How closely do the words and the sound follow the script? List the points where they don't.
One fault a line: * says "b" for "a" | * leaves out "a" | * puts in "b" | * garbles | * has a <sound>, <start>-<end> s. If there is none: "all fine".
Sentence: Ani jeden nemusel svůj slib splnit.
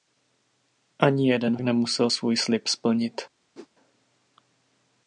* has a whoosh, 3.5-3.7 s